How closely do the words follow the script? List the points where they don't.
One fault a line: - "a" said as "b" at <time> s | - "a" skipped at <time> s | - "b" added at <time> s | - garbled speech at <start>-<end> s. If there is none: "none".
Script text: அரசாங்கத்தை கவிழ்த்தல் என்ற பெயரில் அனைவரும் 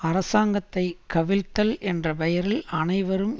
none